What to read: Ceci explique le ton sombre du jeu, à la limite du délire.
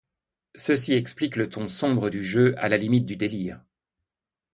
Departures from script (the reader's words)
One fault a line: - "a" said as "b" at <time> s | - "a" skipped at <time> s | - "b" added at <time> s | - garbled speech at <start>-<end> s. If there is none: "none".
none